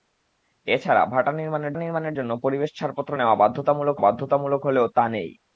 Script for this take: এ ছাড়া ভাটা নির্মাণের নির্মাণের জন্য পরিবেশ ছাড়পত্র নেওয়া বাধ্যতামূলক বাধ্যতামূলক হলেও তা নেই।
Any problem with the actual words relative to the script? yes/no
no